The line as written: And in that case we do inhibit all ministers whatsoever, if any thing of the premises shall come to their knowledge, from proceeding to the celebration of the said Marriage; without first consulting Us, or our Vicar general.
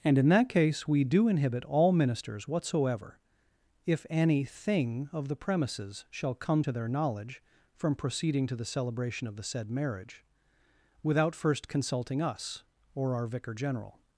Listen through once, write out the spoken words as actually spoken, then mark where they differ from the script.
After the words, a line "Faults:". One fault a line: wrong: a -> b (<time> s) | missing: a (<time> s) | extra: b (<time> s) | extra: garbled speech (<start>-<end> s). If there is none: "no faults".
And in that case we do inhibit all ministers whatsoever, if any thing of the premises shall come to their knowledge, from proceeding to the celebration of the said Marriage; without first consulting Us, or our Vicar general.
Faults:
no faults